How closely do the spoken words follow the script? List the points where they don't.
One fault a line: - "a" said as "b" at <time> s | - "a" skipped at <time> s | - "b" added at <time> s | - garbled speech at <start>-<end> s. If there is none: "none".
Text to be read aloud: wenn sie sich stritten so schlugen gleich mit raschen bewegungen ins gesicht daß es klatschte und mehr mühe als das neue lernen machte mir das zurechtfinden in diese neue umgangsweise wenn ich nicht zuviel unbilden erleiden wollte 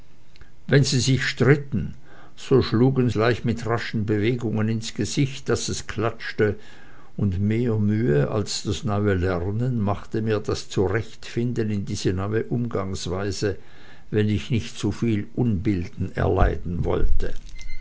none